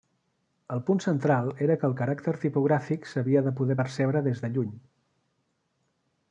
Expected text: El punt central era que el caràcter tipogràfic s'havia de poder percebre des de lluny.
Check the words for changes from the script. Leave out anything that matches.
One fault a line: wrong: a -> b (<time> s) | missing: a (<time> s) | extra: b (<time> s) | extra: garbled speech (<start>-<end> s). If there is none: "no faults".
no faults